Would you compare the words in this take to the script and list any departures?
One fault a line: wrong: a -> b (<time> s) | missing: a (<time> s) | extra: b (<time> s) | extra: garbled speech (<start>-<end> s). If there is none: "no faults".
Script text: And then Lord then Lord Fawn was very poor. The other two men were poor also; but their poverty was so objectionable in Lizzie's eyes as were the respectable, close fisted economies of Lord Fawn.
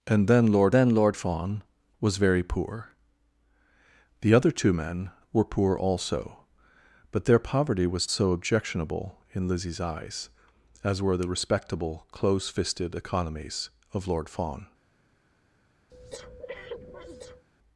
no faults